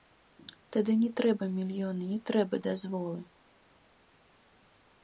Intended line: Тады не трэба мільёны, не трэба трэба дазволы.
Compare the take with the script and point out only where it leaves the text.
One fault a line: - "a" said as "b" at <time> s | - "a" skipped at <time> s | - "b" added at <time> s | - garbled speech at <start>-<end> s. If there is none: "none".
- "трэба" skipped at 2.5 s